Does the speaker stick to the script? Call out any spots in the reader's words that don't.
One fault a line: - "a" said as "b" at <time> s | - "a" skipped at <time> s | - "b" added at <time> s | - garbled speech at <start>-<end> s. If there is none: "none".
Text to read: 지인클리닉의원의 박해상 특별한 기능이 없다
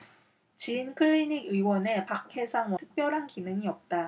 none